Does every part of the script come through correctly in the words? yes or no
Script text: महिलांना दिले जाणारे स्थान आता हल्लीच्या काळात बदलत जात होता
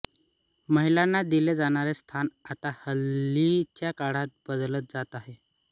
no